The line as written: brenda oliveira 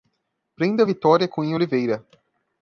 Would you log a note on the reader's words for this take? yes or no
yes